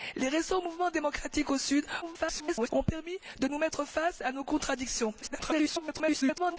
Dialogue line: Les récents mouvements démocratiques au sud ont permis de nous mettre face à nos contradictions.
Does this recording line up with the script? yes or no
no